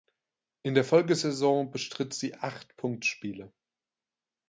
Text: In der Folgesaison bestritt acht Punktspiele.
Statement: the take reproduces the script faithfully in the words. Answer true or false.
false